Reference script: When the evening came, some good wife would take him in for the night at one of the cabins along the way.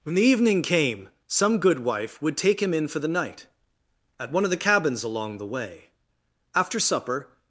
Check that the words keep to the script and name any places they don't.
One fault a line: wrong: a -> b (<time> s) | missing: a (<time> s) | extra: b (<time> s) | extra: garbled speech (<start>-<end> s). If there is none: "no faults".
extra: After supper (6.5 s)